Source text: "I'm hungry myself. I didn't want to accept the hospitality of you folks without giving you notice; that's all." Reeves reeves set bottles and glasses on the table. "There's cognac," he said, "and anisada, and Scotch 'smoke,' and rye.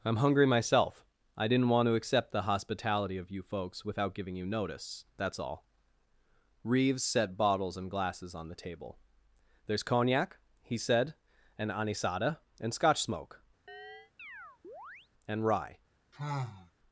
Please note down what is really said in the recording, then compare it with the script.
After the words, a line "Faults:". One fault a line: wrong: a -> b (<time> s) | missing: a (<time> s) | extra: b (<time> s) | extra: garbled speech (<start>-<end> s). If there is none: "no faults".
"I'm hungry myself. I didn't want to accept the hospitality of you folks without giving you notice; that's all." Reeves set bottles and glasses on the table. "There's cognac," he said, "and anisada, and Scotch 'smoke,' and rye.
Faults:
missing: reeves (7.0 s)